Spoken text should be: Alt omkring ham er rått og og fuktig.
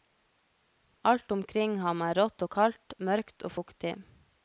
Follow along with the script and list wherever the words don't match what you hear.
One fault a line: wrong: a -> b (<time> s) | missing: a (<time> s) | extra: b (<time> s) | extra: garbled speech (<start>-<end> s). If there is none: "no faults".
extra: kaldt mørkt (2.6 s)